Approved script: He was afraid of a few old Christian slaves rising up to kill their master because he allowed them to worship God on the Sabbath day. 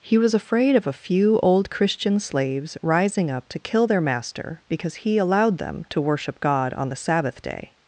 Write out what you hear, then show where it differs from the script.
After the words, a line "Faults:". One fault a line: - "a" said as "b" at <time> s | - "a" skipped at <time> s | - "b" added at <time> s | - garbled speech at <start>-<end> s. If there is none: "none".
He was afraid of a few old Christian slaves rising up to kill their master because he allowed them to worship God on the Sabbath day.
Faults:
none